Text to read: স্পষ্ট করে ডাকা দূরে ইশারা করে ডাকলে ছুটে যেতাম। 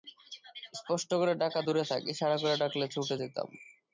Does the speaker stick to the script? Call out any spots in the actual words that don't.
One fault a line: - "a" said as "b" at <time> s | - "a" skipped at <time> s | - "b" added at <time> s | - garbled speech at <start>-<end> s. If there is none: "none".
- "থাক" added at 1.9 s